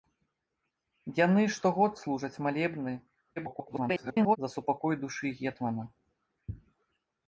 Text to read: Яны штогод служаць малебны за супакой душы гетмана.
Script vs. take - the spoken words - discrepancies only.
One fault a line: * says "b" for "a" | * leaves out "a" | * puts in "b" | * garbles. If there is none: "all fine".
* garbles